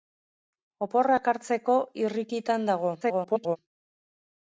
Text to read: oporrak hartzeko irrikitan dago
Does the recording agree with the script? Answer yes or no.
no